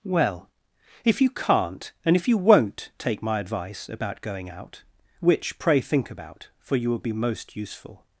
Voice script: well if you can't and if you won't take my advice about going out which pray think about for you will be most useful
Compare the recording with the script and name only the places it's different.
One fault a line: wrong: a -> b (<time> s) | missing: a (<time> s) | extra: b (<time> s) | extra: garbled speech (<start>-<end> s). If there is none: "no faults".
no faults